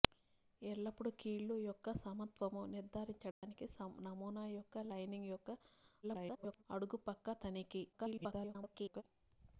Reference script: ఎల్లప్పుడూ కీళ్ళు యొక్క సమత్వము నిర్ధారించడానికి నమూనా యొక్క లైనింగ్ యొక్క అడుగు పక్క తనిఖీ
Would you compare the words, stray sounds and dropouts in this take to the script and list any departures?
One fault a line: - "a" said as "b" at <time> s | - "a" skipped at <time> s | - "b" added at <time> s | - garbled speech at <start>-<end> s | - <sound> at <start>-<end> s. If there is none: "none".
- dropout at 3.3-3.4 s
- garbled speech at 6.0-6.6 s
- garbled speech at 7.9-9.0 s